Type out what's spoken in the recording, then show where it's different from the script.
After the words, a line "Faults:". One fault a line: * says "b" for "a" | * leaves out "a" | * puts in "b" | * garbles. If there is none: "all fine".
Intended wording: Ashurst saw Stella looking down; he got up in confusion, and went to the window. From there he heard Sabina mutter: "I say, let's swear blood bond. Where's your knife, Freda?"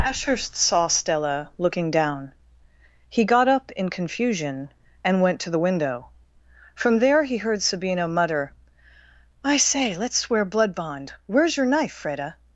Ashurst saw Stella looking down; he got up in confusion, and went to the window. From there he heard Sabina mutter: "I say, let's swear blood bond. Where's your knife, Freda?"
Faults:
all fine